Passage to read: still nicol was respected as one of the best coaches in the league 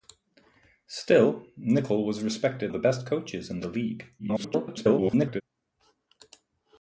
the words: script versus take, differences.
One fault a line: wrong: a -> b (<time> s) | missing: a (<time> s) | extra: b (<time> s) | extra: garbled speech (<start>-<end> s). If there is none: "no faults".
missing: as one (2.7 s)
extra: garbled speech (4.2-5.4 s)